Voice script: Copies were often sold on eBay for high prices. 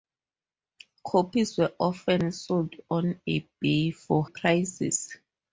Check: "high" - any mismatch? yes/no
yes